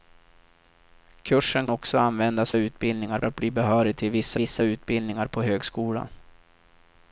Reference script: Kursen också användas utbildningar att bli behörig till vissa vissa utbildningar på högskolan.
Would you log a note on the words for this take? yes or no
no